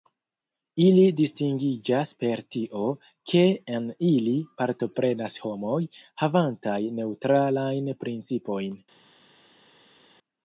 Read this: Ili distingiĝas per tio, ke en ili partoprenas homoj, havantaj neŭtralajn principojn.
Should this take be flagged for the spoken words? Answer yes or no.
no